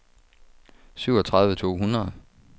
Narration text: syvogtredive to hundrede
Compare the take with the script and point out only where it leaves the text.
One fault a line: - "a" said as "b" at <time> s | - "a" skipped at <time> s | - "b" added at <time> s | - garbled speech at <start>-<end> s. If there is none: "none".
none